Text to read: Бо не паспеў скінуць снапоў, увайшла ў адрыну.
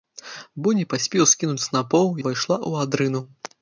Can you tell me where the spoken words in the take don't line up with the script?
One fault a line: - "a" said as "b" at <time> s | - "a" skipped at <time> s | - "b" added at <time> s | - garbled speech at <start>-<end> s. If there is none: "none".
none